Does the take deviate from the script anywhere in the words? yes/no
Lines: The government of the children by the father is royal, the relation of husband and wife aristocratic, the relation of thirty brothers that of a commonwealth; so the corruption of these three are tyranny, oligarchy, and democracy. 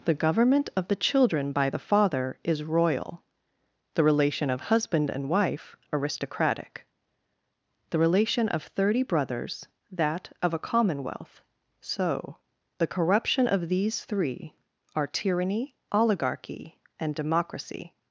no